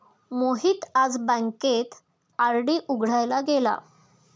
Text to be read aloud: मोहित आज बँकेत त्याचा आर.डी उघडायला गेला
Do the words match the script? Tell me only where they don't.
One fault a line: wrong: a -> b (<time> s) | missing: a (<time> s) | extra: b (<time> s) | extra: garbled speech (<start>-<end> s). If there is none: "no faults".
missing: त्याचा (1.9 s)